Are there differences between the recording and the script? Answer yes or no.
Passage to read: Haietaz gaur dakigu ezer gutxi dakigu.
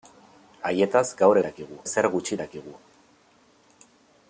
no